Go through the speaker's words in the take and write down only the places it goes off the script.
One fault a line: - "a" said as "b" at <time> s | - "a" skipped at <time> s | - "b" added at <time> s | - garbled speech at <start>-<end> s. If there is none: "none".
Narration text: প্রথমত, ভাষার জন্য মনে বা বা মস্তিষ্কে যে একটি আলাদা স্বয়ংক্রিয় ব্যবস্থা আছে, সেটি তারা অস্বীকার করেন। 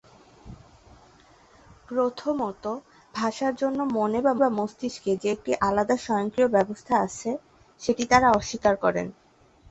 none